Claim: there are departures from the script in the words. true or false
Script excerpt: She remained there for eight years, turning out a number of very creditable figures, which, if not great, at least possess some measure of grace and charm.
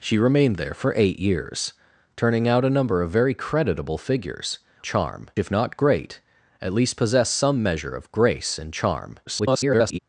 true